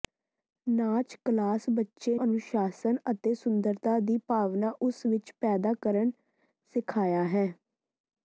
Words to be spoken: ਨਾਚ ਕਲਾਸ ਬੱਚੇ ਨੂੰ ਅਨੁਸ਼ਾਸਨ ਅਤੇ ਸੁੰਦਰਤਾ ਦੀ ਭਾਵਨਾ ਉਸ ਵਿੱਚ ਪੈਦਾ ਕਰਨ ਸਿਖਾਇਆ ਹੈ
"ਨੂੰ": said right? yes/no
no